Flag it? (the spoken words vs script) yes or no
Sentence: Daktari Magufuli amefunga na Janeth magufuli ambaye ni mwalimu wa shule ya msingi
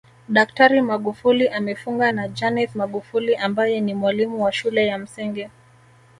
no